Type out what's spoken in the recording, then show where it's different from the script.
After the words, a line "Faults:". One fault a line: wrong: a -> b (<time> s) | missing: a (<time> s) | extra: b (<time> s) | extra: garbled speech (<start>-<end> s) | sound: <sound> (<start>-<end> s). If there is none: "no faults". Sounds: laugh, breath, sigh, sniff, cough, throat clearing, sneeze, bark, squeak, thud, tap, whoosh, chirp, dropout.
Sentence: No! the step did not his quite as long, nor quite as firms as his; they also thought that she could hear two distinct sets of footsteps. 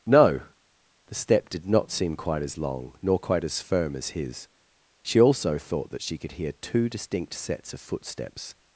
No! the step did not seem quite as long, nor quite as firm as his; she also thought that she could hear two distinct sets of footsteps.
Faults:
wrong: his -> seem (1.9 s)
wrong: firms -> firm (3.6 s)
wrong: they -> she (5.0 s)